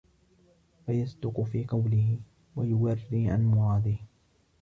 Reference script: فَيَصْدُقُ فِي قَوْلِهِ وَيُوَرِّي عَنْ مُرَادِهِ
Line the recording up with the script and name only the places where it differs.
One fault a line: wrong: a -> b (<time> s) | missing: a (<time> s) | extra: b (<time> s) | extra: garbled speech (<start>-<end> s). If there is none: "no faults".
no faults